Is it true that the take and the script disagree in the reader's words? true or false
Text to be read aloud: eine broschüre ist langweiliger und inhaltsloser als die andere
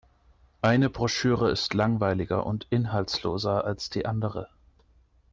false